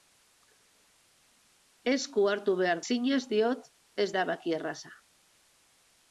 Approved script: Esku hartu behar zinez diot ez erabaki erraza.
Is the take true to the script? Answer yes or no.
yes